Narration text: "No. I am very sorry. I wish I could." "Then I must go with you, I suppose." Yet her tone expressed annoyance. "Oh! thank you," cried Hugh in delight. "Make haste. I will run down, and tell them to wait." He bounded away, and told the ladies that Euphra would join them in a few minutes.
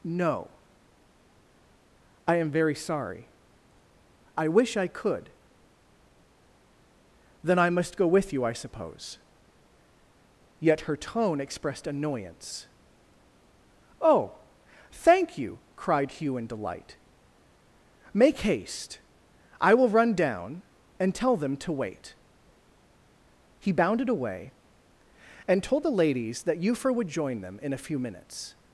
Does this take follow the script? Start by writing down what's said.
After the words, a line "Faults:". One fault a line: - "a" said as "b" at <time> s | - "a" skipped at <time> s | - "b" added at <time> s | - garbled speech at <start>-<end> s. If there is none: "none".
"No. I am very sorry. I wish I could." "Then I must go with you, I suppose." Yet her tone expressed annoyance. "Oh! thank you," cried Hugh in delight. "Make haste. I will run down, and tell them to wait." He bounded away, and told the ladies that Euphra would join them in a few minutes.
Faults:
none